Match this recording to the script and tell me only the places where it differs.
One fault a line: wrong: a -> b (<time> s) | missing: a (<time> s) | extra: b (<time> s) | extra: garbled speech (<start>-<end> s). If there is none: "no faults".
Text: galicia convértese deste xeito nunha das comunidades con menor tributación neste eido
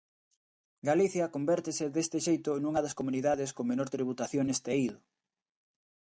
no faults